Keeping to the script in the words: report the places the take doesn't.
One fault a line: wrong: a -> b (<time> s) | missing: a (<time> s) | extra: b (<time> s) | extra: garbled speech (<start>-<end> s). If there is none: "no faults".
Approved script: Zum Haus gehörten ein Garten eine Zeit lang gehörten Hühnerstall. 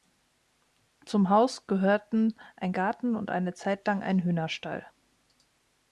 extra: und (3.1 s)
wrong: gehörten -> ein (4.0 s)